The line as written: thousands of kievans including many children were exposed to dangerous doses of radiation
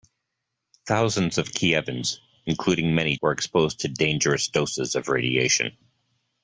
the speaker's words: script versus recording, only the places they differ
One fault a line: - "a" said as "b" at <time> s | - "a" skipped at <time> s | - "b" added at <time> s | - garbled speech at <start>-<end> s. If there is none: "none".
- "children" skipped at 3.2 s